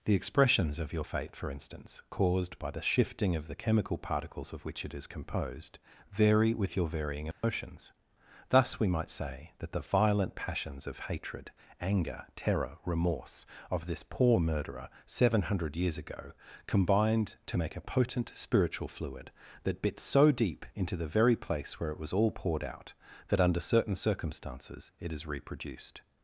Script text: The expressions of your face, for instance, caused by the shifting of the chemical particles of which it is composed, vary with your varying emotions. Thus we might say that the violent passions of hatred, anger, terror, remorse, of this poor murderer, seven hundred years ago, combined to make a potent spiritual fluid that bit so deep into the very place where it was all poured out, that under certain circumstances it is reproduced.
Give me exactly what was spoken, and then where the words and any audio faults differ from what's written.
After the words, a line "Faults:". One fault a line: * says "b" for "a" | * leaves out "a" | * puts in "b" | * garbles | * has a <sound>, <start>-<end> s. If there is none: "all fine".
The expressions of your fate, for instance, caused by the shifting of the chemical particles of which it is composed, vary with your varying emotions. Thus we might say that the violent passions of hatred, anger, terror, remorse, of this poor murderer, seven hundred years ago, combined to make a potent spiritual fluid that bit so deep into the very place where it was all poured out, that under certain circumstances it is reproduced.
Faults:
* says "fate" for "face"
* has a dropout, 7.3-7.4 s